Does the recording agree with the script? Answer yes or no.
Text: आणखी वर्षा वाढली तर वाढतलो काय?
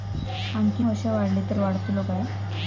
yes